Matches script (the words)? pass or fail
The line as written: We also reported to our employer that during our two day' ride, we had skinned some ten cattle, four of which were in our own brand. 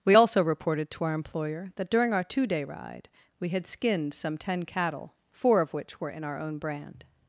pass